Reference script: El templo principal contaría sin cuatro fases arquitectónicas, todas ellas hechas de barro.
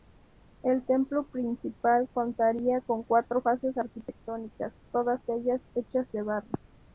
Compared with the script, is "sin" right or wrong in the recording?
wrong